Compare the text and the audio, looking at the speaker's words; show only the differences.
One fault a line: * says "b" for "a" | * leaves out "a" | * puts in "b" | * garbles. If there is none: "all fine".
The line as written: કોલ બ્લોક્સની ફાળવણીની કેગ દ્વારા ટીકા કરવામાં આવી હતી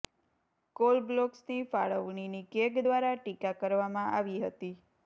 all fine